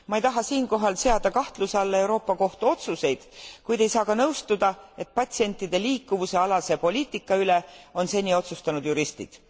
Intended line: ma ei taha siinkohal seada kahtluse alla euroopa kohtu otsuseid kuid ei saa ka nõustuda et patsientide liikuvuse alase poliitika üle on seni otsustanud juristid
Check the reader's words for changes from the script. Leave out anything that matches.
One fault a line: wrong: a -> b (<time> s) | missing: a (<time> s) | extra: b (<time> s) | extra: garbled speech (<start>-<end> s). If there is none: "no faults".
no faults